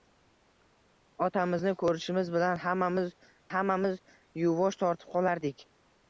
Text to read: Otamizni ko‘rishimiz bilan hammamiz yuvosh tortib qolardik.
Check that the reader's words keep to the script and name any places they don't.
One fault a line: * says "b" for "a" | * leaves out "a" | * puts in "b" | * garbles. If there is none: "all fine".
* puts in "hammamiz"